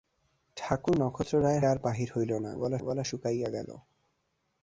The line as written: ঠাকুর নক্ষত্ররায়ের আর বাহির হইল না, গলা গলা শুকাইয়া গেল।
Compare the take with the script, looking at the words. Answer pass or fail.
pass